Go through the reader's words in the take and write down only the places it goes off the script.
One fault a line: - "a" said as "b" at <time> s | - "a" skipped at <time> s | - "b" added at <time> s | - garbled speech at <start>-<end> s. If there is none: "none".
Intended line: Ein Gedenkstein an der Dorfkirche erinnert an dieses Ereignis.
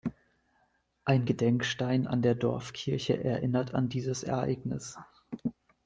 none